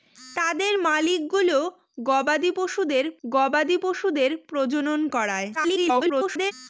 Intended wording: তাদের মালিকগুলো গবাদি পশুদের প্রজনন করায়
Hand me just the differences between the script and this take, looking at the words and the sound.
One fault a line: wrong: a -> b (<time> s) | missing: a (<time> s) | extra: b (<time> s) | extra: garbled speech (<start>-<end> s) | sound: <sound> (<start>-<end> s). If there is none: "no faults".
extra: গবাদি পশুদের (3.3 s)
extra: garbled speech (5.5-6.5 s)